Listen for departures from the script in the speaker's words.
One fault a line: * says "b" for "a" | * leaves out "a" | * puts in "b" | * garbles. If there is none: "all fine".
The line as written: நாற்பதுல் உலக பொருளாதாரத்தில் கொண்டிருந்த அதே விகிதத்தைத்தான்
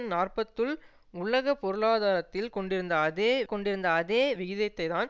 * puts in "கொண்டிருந்த அதே"